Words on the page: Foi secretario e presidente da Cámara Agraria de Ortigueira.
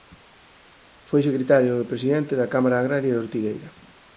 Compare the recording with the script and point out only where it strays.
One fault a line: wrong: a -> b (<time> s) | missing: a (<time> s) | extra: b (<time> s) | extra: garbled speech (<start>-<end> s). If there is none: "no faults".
no faults